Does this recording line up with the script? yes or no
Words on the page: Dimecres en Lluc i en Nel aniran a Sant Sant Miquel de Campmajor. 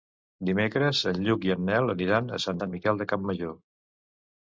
yes